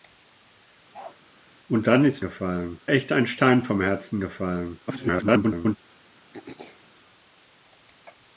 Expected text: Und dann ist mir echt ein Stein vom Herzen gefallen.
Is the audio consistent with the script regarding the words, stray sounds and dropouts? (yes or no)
no